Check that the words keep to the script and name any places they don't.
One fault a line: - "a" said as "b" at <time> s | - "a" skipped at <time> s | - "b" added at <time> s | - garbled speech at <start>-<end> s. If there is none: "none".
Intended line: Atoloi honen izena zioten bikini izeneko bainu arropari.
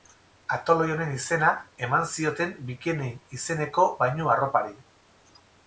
- "eman" added at 1.9 s